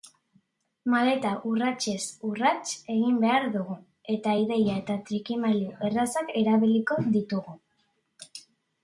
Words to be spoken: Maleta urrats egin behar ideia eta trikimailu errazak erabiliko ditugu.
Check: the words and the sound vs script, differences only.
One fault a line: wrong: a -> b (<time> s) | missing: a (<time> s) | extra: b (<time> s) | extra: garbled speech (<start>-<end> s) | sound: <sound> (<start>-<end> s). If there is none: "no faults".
extra: urratsez (1.5 s)
extra: dugu eta (3.6 s)